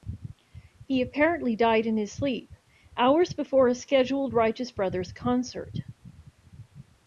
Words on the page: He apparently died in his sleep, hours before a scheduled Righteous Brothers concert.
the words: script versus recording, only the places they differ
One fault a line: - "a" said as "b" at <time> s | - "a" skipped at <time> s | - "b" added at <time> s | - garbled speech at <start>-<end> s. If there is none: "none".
none